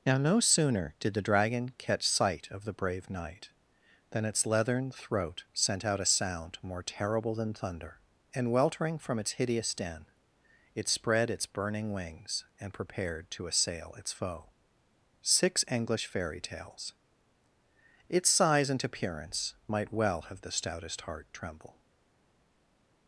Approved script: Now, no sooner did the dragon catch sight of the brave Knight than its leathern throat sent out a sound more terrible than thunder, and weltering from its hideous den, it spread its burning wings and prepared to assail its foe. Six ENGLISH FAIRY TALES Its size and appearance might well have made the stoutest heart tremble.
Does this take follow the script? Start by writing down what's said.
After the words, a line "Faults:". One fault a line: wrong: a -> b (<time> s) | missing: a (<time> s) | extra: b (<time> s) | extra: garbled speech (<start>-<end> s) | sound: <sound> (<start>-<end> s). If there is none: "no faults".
Now, no sooner did the dragon catch sight of the brave Knight than its leathern throat sent out a sound more terrible than thunder, and weltering from its hideous den, it spread its burning wings and prepared to assail its foe. Six ENGLISH FAIRY TALES Its size and appearance might well have the stoutest heart tremble.
Faults:
missing: made (20.4 s)